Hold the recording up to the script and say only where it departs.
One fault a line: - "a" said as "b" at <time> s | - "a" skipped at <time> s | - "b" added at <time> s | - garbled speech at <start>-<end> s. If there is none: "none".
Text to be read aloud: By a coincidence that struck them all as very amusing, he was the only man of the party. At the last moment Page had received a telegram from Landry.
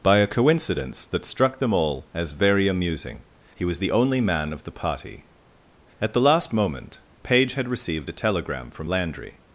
none